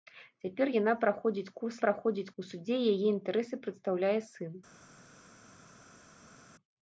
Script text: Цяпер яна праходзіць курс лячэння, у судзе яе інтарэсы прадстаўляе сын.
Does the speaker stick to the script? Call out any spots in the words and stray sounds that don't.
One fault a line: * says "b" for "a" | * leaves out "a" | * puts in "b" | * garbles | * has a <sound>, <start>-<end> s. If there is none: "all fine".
* says "праходзіць" for "лячэння"